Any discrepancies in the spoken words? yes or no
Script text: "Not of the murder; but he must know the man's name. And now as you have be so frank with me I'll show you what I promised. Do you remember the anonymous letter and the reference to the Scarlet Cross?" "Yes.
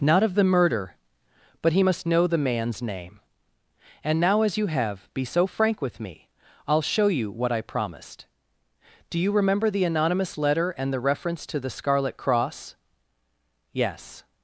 no